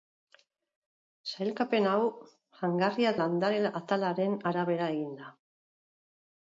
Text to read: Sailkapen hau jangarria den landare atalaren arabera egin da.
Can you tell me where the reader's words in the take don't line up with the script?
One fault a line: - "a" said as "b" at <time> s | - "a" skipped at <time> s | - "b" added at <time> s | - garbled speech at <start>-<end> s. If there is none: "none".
- "den" skipped at 3.1 s